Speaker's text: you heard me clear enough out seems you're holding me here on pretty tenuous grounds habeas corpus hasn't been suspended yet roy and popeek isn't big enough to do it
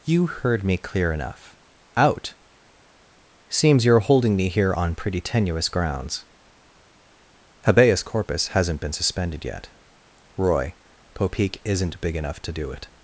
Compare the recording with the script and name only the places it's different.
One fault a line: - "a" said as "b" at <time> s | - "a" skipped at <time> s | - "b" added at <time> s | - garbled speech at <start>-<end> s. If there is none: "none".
- "and" skipped at 10.8 s